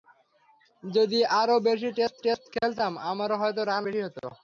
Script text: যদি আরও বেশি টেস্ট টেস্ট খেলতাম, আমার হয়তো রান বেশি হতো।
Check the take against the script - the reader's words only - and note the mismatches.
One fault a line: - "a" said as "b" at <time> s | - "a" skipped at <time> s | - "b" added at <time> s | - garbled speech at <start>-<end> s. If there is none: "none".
none